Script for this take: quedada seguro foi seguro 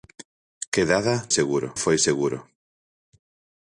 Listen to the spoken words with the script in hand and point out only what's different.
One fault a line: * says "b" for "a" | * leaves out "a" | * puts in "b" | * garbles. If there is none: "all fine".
all fine